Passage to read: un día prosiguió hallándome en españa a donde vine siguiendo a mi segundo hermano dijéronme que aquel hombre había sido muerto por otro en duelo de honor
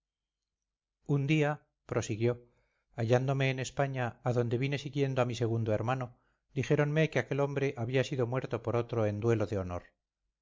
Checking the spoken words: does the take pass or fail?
pass